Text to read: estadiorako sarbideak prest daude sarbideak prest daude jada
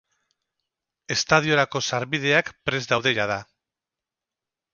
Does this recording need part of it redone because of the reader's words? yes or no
yes